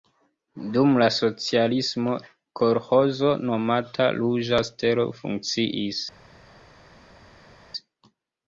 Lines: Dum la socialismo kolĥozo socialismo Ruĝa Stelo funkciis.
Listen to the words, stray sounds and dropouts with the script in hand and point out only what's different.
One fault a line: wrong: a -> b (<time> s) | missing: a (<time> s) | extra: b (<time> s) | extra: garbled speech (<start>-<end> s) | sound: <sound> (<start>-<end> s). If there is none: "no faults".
wrong: socialismo -> nomata (3.5 s)